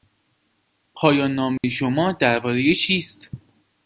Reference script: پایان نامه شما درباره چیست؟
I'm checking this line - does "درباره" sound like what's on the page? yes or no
yes